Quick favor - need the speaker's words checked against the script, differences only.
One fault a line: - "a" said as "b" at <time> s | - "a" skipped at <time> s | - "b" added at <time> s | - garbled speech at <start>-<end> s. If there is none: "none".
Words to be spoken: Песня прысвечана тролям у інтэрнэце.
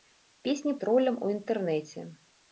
- "прысвечана" skipped at 0.7 s